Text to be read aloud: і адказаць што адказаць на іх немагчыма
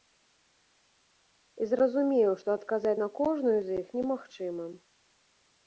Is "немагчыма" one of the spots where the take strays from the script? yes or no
no